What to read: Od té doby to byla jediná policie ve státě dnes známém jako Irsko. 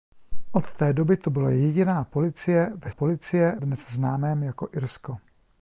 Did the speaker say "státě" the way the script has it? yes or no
no